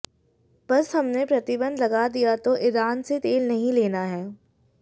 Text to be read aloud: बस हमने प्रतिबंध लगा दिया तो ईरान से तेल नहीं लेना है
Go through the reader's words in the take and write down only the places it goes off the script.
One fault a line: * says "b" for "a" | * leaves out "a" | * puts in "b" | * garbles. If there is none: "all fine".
all fine